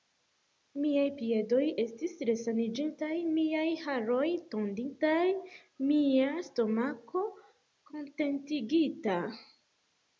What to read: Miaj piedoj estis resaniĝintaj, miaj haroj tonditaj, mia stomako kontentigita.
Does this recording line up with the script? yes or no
yes